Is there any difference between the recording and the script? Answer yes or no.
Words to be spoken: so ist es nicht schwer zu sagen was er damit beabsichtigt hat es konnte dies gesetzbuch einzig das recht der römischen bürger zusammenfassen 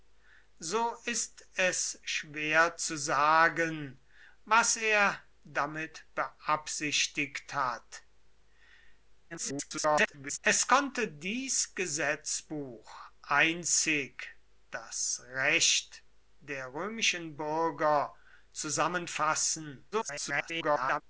yes